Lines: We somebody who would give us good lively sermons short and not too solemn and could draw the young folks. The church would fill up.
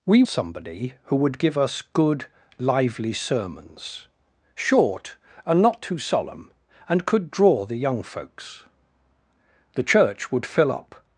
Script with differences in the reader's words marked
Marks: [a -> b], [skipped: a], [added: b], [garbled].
We somebody who would give us good lively sermons short and not too solemn and could draw the young folks. The church would fill up.